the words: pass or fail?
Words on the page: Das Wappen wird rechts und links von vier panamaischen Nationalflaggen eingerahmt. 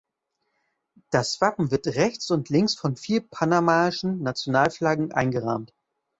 pass